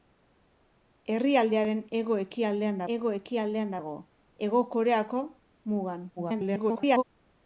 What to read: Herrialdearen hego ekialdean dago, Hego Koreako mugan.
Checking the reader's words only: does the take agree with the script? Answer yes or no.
no